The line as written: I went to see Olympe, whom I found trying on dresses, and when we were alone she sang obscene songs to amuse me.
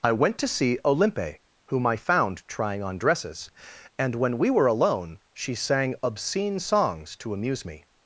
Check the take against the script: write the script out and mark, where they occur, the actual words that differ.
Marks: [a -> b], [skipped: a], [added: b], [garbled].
I went to see Olympe, whom I found trying on dresses, and when we were alone she sang obscene songs to amuse me.